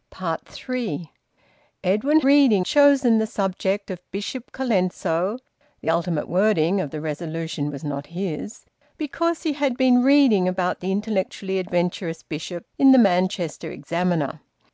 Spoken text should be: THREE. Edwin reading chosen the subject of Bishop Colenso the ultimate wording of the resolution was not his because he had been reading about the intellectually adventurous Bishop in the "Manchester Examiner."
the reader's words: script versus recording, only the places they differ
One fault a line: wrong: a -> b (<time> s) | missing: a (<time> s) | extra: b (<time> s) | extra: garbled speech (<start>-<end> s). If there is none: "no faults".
no faults